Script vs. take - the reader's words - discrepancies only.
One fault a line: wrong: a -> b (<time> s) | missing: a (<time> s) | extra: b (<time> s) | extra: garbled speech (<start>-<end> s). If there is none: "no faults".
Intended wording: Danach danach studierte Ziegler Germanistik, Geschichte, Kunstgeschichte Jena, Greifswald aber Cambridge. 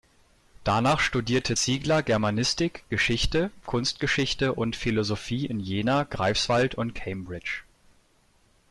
missing: danach (1.0 s)
extra: und Philosophie in (4.5 s)
wrong: aber -> und (6.7 s)